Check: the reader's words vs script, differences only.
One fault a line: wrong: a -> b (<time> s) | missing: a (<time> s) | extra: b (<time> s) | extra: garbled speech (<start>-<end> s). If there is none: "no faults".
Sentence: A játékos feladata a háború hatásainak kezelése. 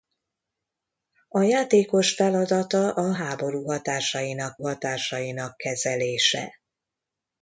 extra: hatásainak (4.6 s)